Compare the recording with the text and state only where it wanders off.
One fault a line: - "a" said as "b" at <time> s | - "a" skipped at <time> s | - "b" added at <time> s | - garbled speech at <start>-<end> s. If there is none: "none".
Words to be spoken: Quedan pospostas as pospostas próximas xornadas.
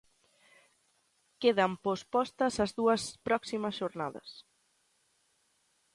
- "pospostas" said as "dúas" at 2.8 s